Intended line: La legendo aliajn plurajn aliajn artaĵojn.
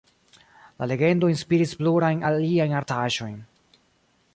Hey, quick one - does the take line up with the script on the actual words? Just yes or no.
no